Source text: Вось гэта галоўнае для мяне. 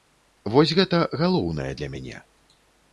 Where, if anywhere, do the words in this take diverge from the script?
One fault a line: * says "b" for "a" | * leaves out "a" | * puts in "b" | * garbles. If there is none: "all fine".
all fine